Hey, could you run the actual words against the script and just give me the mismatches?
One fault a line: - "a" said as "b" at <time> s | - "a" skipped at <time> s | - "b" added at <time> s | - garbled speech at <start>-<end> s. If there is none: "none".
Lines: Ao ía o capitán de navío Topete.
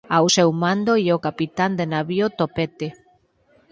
- "seu mando" added at 0.3 s